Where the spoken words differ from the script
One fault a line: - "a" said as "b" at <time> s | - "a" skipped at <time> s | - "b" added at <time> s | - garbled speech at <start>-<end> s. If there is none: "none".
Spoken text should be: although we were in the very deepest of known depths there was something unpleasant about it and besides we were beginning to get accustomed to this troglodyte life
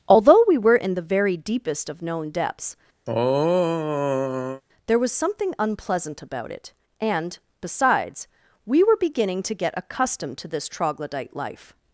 none